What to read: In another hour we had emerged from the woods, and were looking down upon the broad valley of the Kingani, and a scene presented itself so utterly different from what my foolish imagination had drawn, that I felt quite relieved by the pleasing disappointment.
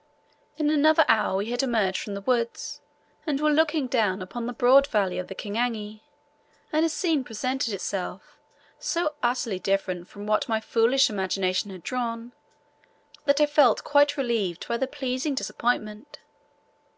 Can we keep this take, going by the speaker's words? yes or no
yes